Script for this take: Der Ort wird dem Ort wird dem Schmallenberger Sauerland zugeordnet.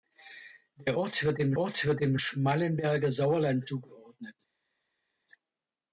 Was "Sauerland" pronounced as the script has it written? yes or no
yes